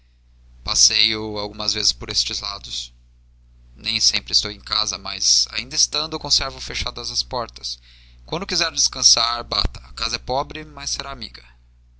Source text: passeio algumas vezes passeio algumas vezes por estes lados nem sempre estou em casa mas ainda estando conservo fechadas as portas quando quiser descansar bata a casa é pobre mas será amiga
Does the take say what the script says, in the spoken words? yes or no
no